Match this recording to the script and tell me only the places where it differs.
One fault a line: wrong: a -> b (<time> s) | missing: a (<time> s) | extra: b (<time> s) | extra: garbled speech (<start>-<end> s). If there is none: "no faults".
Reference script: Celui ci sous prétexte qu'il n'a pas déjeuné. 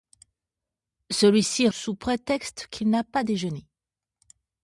no faults